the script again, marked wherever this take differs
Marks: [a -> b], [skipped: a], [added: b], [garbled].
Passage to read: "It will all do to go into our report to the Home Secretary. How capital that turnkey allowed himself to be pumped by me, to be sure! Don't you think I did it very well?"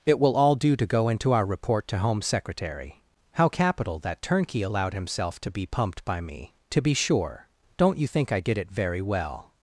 "It will all do to go into our report to [skipped: the] Home Secretary. How capital that turnkey allowed himself to be pumped by me, to be sure! Don't you think I did it very well?"